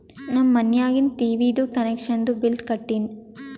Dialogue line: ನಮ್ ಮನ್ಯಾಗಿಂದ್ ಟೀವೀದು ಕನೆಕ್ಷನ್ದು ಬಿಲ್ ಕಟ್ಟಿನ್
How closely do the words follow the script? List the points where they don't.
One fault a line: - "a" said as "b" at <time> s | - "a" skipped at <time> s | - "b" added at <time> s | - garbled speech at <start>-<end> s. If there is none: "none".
none